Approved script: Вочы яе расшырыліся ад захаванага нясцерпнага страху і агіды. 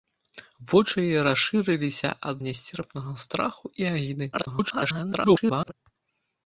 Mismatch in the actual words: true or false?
true